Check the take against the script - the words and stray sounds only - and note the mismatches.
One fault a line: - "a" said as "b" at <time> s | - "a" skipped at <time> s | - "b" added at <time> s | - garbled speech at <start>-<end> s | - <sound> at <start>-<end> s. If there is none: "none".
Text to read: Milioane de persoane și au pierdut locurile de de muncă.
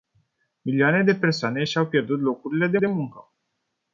none